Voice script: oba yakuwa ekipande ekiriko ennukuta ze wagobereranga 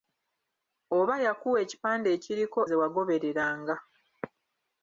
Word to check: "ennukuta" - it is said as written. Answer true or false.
false